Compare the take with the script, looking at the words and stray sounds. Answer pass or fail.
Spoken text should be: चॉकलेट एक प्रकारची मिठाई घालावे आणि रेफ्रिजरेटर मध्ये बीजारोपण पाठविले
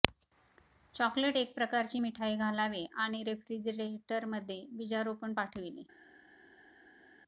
pass